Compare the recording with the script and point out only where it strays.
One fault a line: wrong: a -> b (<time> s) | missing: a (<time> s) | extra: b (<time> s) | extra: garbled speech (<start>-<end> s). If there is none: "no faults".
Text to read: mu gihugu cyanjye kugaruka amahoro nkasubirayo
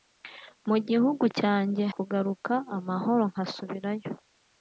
no faults